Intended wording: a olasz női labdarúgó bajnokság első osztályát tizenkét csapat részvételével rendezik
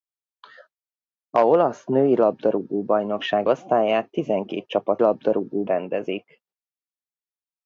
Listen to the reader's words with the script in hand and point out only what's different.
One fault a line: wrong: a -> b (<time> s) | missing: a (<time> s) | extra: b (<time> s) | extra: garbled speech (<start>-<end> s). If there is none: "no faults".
missing: első (3.5 s)
wrong: részvételével -> labdarúgó (5.0 s)